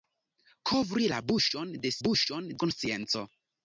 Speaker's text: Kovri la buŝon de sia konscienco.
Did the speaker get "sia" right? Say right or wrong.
wrong